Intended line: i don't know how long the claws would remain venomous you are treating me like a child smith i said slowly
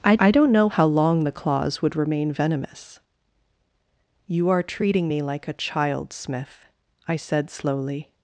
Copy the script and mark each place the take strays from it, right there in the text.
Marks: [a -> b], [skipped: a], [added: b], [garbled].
i [added: i] don't know how long the claws would remain venomous you are treating me like a child smith i said slowly